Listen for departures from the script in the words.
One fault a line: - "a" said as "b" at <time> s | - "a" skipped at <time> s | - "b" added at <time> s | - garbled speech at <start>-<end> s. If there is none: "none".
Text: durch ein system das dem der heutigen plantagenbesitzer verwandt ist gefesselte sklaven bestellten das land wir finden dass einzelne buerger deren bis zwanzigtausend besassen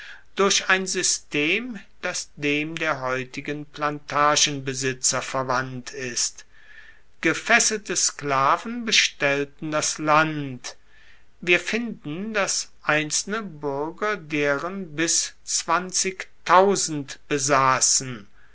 none